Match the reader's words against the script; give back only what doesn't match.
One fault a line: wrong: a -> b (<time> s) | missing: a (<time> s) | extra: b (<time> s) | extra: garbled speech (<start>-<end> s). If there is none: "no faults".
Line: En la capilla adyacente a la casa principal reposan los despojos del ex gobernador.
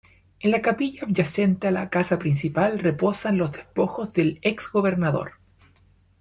no faults